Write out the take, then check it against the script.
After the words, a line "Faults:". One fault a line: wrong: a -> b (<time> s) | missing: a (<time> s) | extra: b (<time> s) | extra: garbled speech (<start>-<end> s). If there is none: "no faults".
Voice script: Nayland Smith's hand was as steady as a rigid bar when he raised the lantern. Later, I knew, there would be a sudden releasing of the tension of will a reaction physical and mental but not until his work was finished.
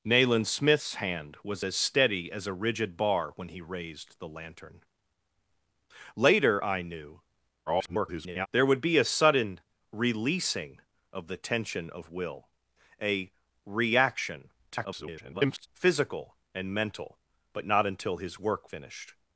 Nayland Smith's hand was as steady as a rigid bar when he raised the lantern. Later, I knew, [garbled] there would be a sudden releasing of the tension of will a reaction [garbled] physical and mental but not until his work finished.
Faults:
extra: garbled speech (7.7-8.5 s)
extra: garbled speech (14.7-15.7 s)
missing: was (18.7 s)